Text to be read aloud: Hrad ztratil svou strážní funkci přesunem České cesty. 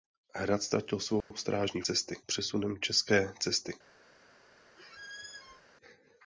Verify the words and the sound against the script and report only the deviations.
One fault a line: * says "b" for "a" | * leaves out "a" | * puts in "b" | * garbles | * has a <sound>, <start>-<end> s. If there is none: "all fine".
* has a dropout, 1.2-1.3 s
* says "cesty" for "funkci"
* has a squeak, 4.8-5.6 s